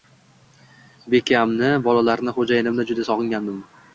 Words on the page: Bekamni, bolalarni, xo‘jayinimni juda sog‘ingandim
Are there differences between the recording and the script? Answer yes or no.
no